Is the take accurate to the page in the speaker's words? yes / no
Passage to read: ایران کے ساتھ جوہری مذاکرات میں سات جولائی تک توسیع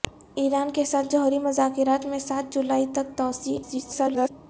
no